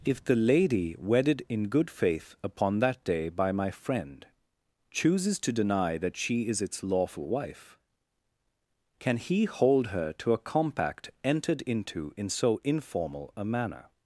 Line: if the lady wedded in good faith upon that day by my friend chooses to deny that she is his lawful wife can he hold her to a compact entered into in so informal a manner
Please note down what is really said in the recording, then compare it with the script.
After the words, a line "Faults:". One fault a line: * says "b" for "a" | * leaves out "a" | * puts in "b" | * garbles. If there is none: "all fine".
if the lady wedded in good faith upon that day by my friend chooses to deny that she is its lawful wife can he hold her to a compact entered into in so informal a manner
Faults:
* says "its" for "his"